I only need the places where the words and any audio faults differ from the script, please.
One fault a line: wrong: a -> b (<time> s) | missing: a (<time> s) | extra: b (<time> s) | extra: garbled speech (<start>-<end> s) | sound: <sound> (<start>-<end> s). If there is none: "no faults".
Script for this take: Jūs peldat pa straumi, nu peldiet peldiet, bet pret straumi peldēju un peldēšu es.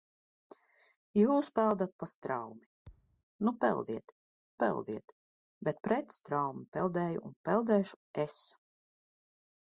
sound: thud (2.9-3.2 s)